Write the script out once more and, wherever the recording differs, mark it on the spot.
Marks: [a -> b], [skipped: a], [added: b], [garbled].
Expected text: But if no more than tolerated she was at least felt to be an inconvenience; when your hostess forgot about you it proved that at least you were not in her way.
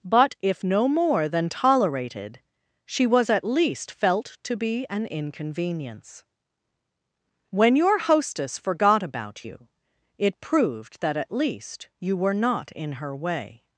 But if no more than tolerated she was at least felt to be an inconvenience; when your hostess forgot about you it proved that at least you were not in her way.